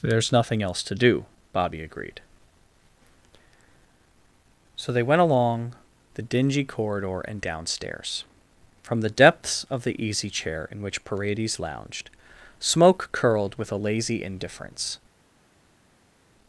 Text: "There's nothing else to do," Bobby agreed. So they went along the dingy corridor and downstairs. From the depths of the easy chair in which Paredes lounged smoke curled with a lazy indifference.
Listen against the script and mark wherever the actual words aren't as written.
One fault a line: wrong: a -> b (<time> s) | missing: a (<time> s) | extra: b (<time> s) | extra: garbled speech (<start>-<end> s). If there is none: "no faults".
no faults